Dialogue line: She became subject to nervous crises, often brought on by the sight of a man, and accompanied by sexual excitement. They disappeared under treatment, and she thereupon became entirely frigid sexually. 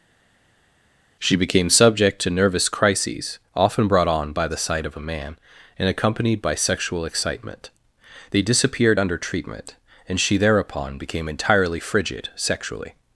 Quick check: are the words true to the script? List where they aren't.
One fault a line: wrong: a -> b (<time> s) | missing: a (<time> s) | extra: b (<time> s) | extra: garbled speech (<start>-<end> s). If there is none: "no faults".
no faults